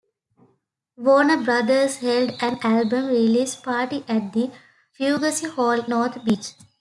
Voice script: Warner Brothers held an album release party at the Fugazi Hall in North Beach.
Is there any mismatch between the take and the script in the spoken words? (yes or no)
yes